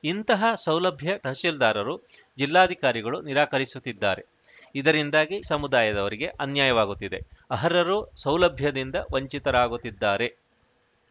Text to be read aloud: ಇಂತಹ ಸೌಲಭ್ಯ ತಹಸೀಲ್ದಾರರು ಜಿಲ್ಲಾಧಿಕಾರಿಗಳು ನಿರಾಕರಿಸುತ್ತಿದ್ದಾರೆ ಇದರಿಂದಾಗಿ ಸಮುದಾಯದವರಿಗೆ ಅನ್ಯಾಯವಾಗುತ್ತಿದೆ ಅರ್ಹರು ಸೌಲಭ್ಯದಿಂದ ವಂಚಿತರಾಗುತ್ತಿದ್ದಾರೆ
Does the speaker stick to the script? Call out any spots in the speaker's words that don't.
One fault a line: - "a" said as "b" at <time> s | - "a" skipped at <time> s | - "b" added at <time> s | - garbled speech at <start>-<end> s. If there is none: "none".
none